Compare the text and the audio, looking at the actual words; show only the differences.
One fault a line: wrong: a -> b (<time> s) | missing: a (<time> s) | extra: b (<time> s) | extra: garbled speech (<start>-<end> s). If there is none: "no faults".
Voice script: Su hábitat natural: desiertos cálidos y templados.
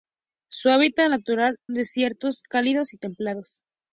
no faults